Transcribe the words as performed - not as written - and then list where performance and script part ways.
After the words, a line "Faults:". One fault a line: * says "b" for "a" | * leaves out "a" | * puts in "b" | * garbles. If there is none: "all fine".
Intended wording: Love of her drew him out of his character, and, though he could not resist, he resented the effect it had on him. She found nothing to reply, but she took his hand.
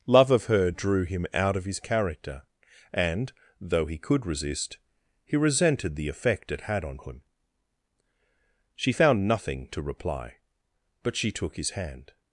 Love of her drew him out of his character, and, though he could resist, he resented the effect it had on him. She found nothing to reply, but she took his hand.
Faults:
* leaves out "not"